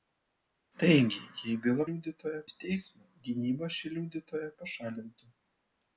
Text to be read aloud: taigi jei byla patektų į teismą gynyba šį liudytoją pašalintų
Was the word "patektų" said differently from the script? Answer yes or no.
yes